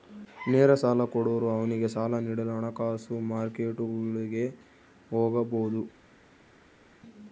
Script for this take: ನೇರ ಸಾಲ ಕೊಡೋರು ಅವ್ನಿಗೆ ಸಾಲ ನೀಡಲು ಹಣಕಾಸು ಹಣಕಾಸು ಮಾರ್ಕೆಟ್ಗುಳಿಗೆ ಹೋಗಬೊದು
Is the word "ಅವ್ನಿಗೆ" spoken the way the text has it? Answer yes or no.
yes